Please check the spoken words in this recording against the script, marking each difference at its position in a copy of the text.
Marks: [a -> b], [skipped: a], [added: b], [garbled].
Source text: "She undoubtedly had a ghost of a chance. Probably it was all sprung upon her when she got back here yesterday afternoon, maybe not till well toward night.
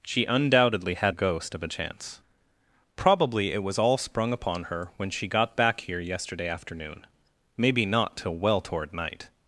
"She undoubtedly had a ghost of a chance. Probably it was all sprung upon her when she got back here yesterday afternoon, maybe not till well toward night.